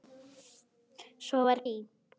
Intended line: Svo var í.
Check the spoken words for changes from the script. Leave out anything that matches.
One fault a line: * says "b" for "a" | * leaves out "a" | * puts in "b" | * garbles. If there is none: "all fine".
all fine